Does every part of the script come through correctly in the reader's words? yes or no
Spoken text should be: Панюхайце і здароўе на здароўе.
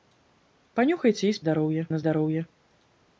yes